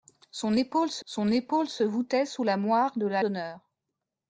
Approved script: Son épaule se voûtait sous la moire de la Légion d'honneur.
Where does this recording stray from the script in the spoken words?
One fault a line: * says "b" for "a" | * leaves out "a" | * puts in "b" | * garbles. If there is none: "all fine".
* puts in "son épaule se"
* leaves out "Légion"